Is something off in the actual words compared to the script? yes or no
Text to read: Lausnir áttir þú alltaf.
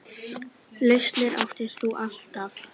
no